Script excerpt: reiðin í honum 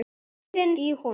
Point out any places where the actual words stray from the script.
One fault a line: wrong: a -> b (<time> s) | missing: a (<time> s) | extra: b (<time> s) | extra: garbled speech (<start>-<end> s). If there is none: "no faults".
no faults